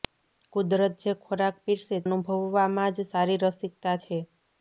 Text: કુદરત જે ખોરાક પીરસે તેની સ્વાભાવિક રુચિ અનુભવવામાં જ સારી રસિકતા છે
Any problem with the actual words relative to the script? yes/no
yes